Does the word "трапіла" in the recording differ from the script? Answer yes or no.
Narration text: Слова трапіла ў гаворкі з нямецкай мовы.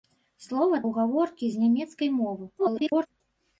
yes